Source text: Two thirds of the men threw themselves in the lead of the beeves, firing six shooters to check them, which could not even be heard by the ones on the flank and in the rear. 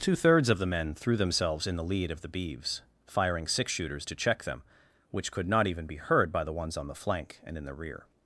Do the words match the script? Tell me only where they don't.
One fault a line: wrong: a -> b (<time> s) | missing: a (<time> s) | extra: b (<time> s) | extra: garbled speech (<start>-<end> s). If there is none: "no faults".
no faults